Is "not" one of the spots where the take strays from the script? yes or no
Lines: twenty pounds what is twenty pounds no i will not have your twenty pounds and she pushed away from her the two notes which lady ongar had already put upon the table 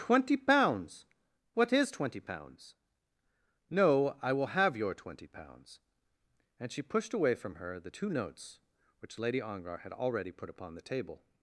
yes